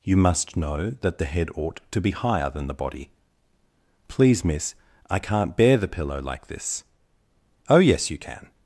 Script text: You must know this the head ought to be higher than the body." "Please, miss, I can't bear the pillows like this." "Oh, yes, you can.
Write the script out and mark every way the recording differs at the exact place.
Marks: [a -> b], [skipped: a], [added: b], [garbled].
You must know [this -> that] the head ought to be higher than the body." "Please, miss, I can't bear the [pillows -> pillow] like this." "Oh, yes, you can.